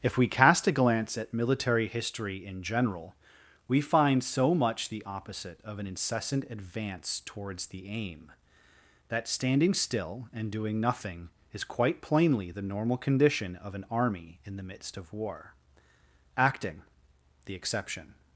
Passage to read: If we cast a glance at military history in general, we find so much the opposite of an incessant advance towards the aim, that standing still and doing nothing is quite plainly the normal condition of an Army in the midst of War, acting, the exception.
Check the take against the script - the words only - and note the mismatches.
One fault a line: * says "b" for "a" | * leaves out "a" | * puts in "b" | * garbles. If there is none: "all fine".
all fine